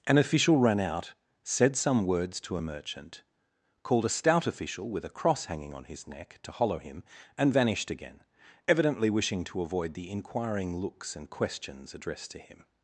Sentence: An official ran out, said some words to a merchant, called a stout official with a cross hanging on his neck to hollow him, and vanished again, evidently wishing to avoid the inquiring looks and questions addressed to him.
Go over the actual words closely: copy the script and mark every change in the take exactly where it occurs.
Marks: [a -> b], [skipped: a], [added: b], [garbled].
An official ran out, said some words to a merchant, called a stout official with a cross hanging on his neck to hollow him, and vanished again, evidently wishing to avoid the inquiring looks and questions addressed to him.